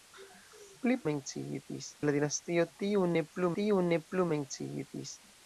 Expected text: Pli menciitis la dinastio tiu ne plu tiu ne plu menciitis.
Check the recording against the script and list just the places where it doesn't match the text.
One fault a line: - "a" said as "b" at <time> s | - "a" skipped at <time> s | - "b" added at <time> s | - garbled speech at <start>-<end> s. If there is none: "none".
none